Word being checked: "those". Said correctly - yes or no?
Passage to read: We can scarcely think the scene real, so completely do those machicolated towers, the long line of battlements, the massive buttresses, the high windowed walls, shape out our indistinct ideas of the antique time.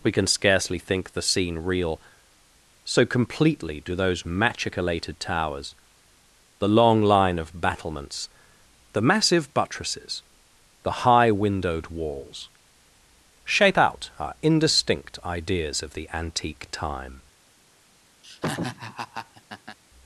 yes